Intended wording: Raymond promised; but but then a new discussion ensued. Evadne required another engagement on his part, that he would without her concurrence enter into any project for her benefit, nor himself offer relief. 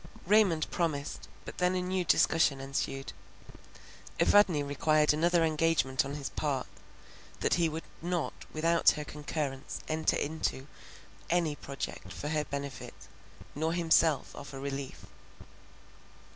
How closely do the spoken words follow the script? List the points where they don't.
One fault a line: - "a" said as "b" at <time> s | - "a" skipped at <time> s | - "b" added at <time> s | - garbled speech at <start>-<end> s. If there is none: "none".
- "but" skipped at 1.6 s
- "not" added at 8.0 s